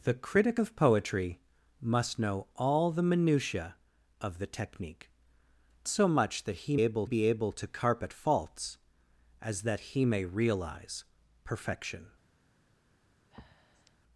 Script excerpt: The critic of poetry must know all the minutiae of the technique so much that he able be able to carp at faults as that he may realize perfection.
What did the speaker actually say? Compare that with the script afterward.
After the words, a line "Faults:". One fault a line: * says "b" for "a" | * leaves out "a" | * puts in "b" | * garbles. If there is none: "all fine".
The critic of poetry must know all the minutiae of the technique so much that he able be able to carp at faults as that he may realize perfection.
Faults:
all fine